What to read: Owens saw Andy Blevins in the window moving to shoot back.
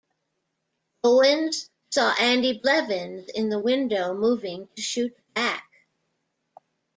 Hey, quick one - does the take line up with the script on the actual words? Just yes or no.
yes